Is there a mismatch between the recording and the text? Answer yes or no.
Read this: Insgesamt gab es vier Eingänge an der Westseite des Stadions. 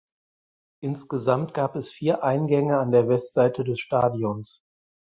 no